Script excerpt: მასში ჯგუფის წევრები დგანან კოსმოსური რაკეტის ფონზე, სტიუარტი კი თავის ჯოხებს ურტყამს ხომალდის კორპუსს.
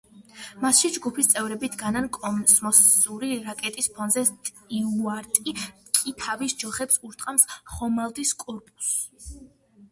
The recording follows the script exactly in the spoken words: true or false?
true